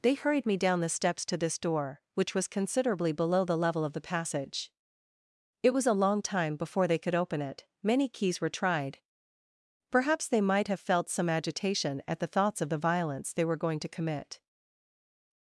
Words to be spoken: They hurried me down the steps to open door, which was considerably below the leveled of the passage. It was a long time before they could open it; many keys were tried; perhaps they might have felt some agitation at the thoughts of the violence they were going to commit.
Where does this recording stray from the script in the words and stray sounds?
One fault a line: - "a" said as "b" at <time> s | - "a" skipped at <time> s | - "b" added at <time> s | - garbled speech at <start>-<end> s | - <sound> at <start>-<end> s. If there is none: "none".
- "open" said as "this" at 1.4 s
- "leveled" said as "level" at 3.6 s